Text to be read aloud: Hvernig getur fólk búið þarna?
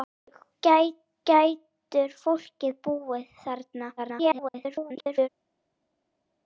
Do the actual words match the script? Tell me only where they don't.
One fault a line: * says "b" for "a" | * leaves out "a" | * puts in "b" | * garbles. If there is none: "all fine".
* puts in "hvernig"
* garbles